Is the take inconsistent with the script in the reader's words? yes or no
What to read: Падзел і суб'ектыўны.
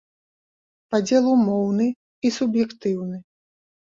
yes